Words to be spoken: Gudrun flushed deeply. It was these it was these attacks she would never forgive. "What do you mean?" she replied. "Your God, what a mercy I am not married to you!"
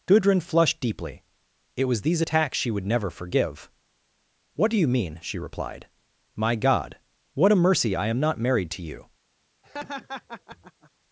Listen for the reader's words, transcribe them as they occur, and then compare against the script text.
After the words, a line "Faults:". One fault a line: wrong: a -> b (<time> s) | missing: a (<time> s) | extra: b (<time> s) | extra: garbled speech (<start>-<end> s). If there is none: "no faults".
Gudrun flushed deeply. It was these attacks she would never forgive. "What do you mean?" she replied. "My God, what a mercy I am not married to you!"
Faults:
missing: it was these (2.2 s)
wrong: Your -> My (6.3 s)